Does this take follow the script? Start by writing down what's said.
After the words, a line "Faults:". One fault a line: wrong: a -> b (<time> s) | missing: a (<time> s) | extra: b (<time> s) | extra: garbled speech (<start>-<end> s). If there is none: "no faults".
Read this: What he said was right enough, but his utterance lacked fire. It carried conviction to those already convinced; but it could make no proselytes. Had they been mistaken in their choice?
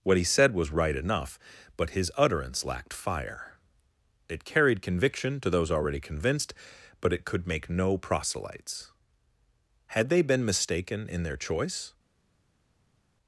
What he said was right enough, but his utterance lacked fire. It carried conviction to those already convinced; but it could make no proselytes. Had they been mistaken in their choice?
Faults:
no faults